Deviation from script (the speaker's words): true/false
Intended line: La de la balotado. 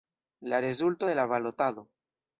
true